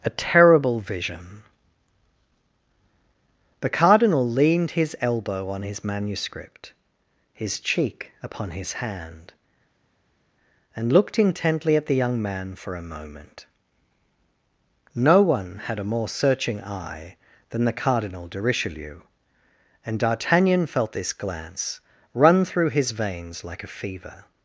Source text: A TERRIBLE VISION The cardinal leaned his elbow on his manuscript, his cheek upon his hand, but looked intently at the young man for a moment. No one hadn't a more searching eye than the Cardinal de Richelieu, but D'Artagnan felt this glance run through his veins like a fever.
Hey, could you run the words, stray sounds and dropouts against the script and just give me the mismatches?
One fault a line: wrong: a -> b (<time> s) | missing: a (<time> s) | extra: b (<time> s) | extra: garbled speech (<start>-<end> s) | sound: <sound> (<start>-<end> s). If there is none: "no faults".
wrong: but -> and (10.7 s)
wrong: hadn't -> had (15.6 s)
wrong: but -> and (19.8 s)